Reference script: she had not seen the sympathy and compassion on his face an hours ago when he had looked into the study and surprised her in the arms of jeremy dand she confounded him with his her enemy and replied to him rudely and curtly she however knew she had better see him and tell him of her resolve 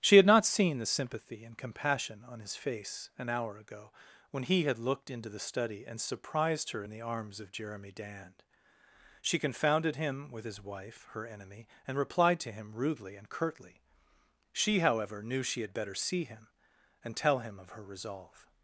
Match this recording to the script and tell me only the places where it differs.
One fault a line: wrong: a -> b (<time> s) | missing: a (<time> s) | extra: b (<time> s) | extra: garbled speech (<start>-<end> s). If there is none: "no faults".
wrong: hours -> hour (3.3 s)
extra: wife (10.6 s)